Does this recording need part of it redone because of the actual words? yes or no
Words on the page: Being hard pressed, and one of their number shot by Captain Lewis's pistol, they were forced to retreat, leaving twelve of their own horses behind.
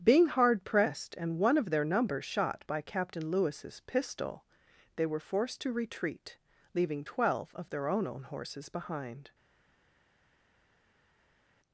yes